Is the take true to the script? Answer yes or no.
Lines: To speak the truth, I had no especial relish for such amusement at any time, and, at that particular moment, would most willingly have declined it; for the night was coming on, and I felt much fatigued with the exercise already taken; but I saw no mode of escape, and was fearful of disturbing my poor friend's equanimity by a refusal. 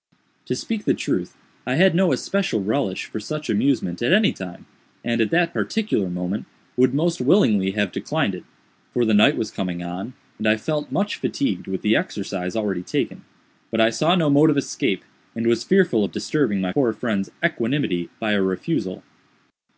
yes